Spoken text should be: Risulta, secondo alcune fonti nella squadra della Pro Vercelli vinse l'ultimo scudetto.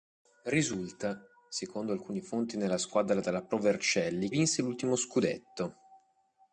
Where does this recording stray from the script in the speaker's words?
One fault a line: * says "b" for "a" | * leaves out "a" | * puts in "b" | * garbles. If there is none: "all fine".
all fine